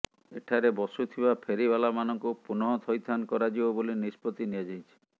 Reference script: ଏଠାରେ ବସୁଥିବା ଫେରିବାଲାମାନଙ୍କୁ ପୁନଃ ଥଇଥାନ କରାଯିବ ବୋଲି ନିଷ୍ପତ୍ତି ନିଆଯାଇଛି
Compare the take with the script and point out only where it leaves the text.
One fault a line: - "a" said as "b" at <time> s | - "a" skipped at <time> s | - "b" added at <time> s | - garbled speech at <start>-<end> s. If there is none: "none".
none